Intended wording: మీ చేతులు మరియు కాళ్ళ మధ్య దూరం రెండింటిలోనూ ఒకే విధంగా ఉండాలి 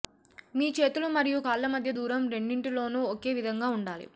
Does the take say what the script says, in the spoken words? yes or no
yes